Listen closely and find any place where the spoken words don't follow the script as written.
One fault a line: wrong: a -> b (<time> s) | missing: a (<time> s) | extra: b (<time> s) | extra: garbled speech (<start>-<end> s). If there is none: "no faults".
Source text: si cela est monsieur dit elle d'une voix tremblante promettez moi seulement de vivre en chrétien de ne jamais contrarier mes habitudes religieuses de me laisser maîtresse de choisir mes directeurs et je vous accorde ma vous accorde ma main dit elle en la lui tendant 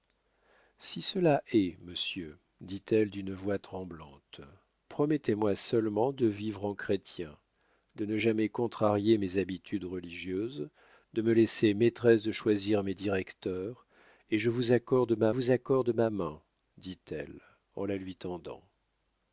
no faults